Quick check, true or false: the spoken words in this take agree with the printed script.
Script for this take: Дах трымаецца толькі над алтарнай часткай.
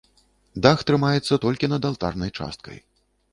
true